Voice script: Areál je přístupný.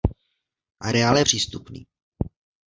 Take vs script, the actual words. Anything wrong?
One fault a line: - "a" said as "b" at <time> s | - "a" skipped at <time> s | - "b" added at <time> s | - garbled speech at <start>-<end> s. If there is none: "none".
none